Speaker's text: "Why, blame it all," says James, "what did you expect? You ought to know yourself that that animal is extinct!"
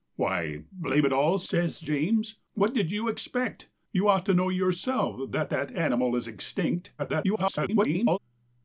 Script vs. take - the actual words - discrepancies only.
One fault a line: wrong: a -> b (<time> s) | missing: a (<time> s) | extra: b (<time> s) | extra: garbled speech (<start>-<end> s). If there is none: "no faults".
extra: garbled speech (7.0-8.2 s)